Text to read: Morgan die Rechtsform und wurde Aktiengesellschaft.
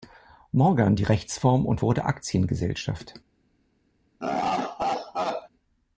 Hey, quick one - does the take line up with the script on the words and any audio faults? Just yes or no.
no